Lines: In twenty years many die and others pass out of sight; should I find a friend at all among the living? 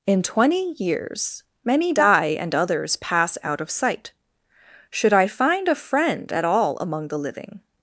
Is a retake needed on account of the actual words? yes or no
no